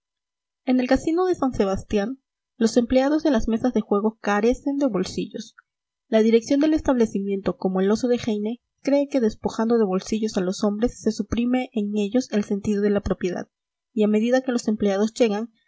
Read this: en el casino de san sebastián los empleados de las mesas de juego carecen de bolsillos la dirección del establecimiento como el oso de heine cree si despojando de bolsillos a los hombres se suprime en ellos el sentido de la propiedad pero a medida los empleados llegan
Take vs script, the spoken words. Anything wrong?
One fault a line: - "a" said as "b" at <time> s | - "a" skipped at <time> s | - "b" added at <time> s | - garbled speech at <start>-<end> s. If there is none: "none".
- "si" said as "que" at 9.1 s
- "pero" said as "y" at 13.9 s
- "que" added at 14.4 s